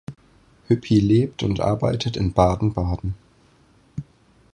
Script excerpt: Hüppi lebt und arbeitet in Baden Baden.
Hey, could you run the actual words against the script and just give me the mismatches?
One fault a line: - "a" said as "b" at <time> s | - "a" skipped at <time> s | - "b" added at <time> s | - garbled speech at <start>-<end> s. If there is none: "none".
none